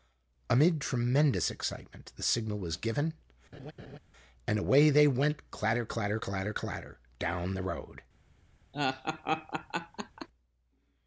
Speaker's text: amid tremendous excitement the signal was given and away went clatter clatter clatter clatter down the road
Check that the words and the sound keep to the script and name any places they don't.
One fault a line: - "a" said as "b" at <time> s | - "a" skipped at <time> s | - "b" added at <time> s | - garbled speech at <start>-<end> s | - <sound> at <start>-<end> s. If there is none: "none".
- laugh at 3.5-4.0 s
- "they" added at 4.9 s
- laugh at 8.7-10.3 s